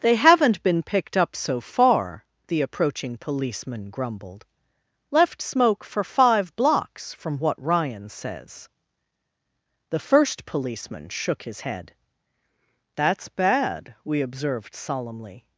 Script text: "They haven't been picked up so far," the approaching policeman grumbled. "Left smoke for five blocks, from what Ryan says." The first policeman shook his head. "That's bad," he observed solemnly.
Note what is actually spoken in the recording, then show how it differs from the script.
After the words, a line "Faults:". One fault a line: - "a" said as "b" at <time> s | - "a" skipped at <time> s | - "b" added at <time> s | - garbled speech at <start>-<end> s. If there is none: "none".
"They haven't been picked up so far," the approaching policeman grumbled. "Left smoke for five blocks, from what Ryan says." The first policeman shook his head. "That's bad," we observed solemnly.
Faults:
- "he" said as "we" at 14.0 s